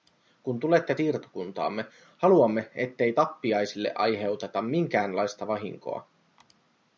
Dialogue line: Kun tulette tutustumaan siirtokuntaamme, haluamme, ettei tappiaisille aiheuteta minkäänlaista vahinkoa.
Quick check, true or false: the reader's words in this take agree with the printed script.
false